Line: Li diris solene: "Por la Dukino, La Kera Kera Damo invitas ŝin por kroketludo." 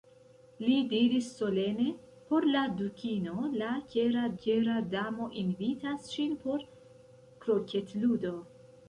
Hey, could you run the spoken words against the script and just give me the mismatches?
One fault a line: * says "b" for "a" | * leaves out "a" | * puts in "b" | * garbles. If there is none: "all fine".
all fine